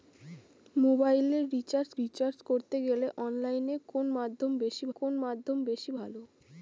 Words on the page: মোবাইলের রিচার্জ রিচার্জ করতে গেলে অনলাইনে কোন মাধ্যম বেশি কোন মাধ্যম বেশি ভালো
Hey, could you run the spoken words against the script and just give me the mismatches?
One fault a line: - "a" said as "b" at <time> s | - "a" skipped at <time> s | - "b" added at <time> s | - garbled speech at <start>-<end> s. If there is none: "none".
none